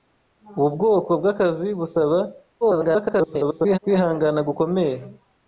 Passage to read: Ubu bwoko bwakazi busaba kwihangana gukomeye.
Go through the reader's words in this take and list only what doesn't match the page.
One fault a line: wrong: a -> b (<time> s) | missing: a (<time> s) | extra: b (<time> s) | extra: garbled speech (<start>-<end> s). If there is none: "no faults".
extra: garbled speech (2.6-3.8 s)